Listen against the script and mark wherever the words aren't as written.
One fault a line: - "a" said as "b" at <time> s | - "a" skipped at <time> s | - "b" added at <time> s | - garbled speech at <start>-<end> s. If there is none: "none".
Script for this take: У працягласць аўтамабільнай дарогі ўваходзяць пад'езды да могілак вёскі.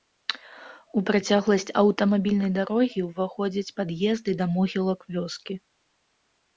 none